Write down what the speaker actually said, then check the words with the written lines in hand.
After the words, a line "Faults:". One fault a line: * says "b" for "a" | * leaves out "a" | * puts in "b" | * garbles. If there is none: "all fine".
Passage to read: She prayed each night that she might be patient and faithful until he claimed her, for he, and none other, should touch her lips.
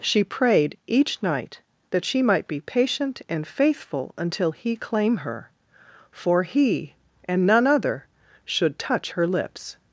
She prayed each night that she might be patient and faithful until he claim her, for he, and none other, should touch her lips.
Faults:
* says "claim" for "claimed"